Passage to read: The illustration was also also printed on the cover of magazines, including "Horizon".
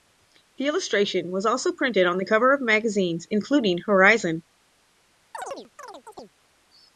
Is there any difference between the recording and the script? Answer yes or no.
yes